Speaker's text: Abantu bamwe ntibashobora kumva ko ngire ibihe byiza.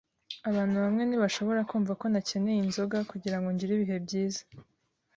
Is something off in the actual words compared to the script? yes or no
yes